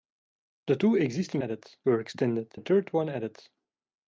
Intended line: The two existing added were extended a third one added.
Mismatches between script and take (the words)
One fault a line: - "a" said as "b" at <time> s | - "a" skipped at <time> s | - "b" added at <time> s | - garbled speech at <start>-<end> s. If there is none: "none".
none